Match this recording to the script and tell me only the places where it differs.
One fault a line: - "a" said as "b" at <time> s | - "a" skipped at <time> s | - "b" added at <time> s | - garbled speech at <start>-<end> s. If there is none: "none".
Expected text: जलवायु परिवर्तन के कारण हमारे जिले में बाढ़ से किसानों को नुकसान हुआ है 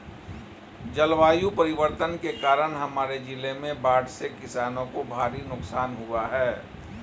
- "भारी" added at 5.1 s